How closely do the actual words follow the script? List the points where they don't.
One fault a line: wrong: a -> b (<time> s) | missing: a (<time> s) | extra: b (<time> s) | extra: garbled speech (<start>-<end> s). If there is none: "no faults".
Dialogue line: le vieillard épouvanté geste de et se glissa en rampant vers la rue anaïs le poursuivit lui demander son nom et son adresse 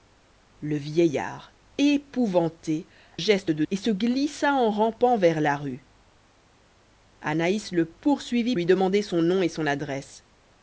no faults